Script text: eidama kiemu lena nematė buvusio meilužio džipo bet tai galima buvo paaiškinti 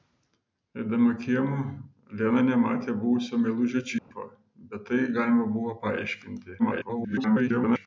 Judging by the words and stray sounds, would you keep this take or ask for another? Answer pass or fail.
fail